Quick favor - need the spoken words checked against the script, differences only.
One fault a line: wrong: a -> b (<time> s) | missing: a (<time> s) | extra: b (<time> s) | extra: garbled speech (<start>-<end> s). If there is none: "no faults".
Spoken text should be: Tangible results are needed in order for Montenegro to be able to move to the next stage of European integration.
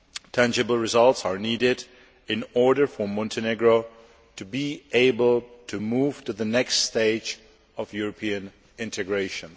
no faults